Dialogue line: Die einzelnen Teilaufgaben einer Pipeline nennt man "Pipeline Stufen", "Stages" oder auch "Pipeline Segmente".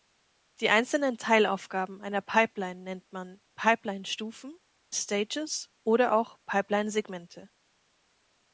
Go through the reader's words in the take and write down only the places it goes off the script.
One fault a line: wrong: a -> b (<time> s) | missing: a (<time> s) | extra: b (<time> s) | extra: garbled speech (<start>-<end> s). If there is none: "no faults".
no faults